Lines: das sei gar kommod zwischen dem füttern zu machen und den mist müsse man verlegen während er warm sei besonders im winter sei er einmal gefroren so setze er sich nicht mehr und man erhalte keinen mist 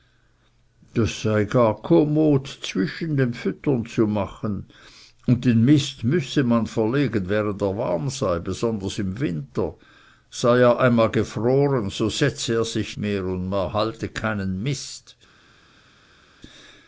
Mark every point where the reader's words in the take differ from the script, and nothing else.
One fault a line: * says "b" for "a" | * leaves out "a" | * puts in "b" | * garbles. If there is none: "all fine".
* leaves out "nicht"